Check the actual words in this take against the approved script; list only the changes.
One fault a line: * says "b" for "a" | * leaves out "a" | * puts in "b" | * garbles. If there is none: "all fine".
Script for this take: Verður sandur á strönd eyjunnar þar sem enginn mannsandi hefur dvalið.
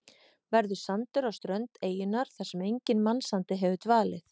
all fine